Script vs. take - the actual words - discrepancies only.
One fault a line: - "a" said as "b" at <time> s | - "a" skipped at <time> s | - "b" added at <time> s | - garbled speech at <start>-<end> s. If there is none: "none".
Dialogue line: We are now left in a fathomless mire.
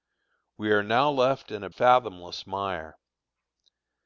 none